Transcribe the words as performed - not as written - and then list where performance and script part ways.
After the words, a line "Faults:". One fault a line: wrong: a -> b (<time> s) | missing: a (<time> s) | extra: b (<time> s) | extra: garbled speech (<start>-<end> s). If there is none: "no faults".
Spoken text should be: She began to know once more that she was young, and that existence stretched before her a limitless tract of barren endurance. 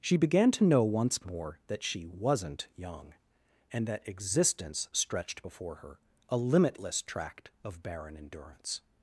She began to know once more that she wasn't young, and that existence stretched before her a limitless tract of barren endurance.
Faults:
wrong: was -> wasn't (2.0 s)